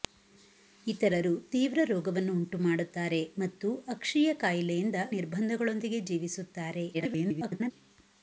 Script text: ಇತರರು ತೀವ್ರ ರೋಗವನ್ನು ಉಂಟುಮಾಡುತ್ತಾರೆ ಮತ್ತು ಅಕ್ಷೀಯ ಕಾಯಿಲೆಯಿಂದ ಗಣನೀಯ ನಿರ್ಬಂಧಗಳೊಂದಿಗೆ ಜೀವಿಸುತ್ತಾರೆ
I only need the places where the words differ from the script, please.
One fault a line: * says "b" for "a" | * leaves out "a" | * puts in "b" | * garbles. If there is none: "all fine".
* leaves out "ಗಣನೀಯ"
* garbles